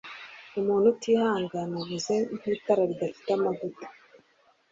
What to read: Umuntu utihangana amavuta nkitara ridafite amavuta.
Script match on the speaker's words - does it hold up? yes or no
no